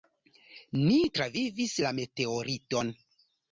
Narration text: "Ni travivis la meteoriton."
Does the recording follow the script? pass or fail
pass